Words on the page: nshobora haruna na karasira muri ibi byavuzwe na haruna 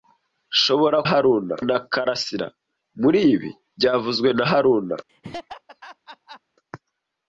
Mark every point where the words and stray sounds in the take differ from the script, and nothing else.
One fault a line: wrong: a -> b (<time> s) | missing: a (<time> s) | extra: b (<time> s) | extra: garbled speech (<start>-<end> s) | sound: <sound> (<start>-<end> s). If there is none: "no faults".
sound: laugh (5.1-6.4 s)